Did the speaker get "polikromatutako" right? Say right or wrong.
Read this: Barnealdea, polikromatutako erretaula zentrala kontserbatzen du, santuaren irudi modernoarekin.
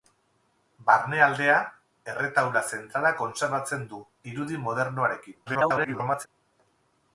wrong